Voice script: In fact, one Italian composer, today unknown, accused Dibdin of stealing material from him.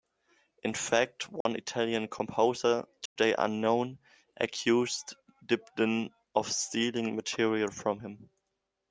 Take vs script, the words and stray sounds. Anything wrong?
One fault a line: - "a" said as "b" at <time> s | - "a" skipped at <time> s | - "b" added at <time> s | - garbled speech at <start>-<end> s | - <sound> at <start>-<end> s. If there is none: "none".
- dropout at 1.4-1.5 s
- dropout at 3.1-3.2 s